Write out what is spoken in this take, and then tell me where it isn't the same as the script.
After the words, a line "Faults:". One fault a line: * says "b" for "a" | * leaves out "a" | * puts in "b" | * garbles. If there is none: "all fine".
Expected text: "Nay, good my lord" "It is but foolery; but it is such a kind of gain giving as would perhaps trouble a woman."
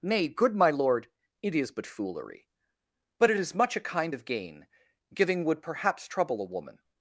"Nay, good my lord" "It is but foolery; but it is much a kind of gain giving would perhaps trouble a woman."
Faults:
* says "much" for "such"
* leaves out "as"